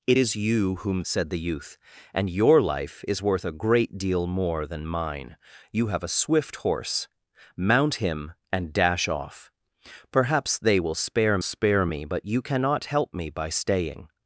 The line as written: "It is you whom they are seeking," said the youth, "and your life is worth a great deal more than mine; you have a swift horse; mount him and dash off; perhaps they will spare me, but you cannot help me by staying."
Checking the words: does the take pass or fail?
fail